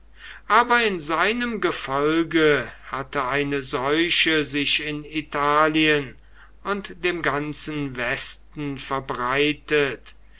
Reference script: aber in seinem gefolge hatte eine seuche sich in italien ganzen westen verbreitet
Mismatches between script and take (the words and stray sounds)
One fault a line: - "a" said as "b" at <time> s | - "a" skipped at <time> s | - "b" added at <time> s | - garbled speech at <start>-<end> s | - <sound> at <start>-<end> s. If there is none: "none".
- "und dem" added at 6.6 s